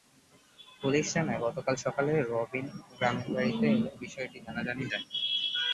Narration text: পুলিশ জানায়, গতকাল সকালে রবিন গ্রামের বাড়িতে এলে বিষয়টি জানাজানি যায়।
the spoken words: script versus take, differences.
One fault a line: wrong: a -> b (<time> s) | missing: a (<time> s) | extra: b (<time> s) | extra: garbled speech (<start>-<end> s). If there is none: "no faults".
no faults